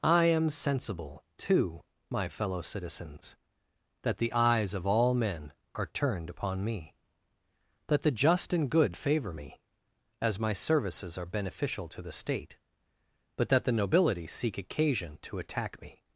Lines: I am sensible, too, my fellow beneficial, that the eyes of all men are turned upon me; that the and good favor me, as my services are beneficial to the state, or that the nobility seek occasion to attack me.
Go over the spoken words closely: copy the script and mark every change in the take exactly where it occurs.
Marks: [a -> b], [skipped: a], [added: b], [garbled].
I am sensible, too, my fellow [beneficial, -> citizens] that the eyes of all men are turned upon me; that the [added: just] and good favor me, as my services are beneficial to the state, [or -> but] that the nobility seek occasion to attack me.